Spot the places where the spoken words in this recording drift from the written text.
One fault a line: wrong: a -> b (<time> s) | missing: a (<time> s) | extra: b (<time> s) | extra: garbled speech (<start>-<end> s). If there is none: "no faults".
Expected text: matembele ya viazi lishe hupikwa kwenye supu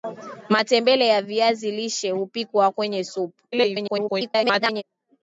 extra: garbled speech (3.5-4.8 s)